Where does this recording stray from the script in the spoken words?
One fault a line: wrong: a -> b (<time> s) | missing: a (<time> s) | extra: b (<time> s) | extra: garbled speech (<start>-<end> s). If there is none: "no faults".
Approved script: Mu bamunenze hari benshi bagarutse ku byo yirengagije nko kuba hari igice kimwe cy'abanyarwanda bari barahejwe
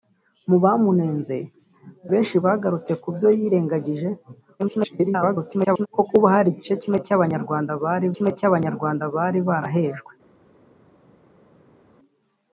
missing: hari (1.4 s)
extra: garbled speech (4.6-5.9 s)
extra: kimwe cy'abanyarwanda bari (8.1 s)